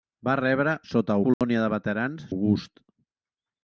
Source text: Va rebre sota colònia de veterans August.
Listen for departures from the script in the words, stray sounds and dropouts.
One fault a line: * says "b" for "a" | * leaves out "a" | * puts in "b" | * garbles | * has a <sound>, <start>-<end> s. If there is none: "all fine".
* has a dropout, 1.3-1.4 s